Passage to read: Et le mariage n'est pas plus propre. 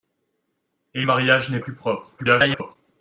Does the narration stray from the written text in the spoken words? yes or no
yes